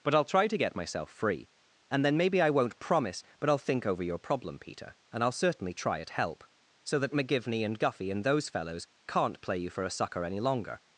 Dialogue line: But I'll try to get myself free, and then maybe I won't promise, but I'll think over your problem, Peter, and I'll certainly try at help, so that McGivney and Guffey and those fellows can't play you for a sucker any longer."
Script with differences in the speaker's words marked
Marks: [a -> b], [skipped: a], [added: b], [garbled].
But I'll try to get myself free, and then maybe I won't promise, but I'll think over your problem, Peter, and I'll certainly try at help, so that McGivney and Guffey and those fellows can't play you for a sucker any longer."